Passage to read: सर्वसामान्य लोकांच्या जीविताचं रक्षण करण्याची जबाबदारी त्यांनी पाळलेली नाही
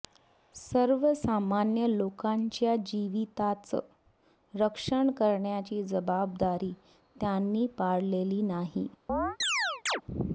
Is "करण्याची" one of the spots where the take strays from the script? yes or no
no